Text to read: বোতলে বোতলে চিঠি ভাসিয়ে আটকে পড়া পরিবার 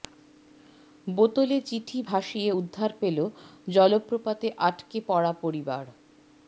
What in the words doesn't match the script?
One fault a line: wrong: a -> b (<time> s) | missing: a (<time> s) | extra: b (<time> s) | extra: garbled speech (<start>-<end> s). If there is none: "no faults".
missing: বোতলে (1.6 s)
extra: উদ্ধার পেল জলপ্রপাতে (2.6 s)